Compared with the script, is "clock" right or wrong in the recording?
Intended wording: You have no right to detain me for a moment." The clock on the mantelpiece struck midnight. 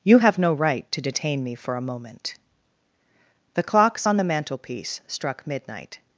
wrong